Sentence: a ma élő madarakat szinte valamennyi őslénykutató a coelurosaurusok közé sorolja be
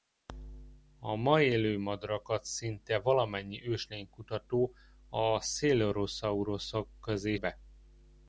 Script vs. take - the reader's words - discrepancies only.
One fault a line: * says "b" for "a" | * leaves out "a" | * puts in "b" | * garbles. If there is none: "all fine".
* leaves out "sorolja"